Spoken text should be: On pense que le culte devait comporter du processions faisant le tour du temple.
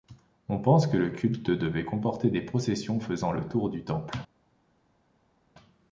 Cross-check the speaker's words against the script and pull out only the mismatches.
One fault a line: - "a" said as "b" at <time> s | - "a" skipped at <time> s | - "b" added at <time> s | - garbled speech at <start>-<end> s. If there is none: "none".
- "du" said as "des" at 2.3 s